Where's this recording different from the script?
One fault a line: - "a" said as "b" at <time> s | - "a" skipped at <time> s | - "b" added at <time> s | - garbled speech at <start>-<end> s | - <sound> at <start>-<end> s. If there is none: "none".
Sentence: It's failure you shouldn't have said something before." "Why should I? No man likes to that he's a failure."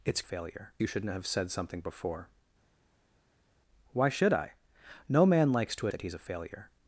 none